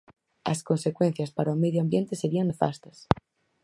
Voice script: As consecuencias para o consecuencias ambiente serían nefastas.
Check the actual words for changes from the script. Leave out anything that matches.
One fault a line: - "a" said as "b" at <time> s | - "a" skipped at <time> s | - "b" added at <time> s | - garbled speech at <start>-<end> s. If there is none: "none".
- "consecuencias" said as "medio" at 1.6 s